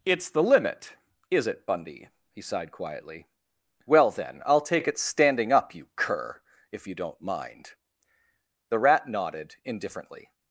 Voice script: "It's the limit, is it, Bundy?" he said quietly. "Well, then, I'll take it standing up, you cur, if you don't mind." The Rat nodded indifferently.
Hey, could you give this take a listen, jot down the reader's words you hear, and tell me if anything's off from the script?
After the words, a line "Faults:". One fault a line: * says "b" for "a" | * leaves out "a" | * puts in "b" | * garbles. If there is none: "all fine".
"It's the limit, is it, Bundy?" he sighed quietly. "Well, then, I'll take it standing up, you cur, if you don't mind." The Rat nodded indifferently.
Faults:
* says "sighed" for "said"